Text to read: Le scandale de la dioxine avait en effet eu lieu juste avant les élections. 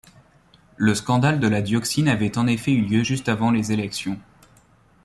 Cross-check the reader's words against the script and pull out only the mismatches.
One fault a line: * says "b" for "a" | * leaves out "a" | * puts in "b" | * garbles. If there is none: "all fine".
all fine